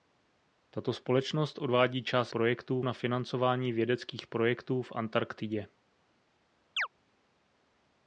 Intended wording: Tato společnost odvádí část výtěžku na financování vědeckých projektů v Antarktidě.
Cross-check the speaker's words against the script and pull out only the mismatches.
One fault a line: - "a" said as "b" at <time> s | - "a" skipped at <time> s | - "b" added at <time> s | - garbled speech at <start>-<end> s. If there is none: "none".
- "výtěžku" said as "projektů" at 2.3 s